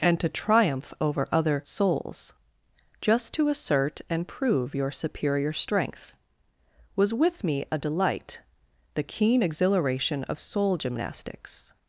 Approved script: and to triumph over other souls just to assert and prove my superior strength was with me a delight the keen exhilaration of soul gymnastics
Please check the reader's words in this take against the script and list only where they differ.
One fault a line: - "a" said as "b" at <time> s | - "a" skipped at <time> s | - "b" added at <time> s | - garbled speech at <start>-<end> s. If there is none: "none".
- "my" said as "your" at 4.8 s